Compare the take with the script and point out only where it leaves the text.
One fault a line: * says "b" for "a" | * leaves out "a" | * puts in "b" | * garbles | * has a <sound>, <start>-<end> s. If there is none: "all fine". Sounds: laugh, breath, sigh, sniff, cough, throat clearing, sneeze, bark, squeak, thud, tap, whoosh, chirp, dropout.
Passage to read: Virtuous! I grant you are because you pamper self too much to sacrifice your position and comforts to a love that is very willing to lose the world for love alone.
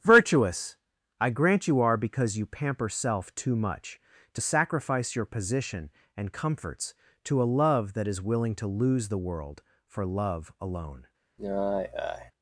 * leaves out "very"
* has a sigh, 11.4-12.3 s